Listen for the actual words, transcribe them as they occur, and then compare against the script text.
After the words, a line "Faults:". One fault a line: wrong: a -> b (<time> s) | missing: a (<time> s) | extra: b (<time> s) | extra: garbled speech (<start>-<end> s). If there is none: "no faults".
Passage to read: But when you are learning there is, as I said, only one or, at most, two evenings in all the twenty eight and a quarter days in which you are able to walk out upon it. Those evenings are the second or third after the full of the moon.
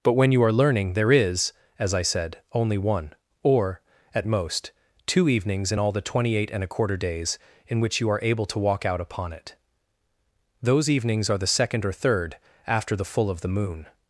But when you are learning there is, as I said, only one or, at most, two evenings in all the twenty eight and a quarter days in which you are able to walk out upon it. Those evenings are the second or third after the full of the moon.
Faults:
no faults